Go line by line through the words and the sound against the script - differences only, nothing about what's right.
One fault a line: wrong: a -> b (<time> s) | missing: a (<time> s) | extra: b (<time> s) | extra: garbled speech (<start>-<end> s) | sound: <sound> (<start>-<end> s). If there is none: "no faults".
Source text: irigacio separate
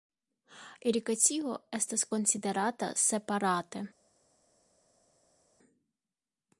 extra: estas konsiderata (1.8 s)